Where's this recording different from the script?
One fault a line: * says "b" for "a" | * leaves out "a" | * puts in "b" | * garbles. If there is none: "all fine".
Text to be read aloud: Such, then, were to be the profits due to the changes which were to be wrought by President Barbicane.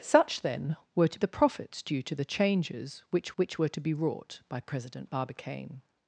* leaves out "be"
* puts in "which"